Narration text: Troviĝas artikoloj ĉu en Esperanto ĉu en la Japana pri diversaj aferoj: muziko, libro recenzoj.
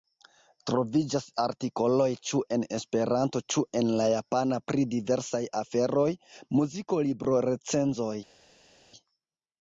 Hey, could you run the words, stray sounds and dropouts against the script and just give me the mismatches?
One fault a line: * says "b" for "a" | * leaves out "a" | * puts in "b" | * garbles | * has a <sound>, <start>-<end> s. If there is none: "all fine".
all fine